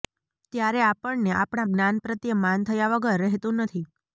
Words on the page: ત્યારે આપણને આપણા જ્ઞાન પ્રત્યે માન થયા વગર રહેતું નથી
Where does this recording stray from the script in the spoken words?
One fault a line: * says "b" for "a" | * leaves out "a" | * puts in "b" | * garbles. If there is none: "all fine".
all fine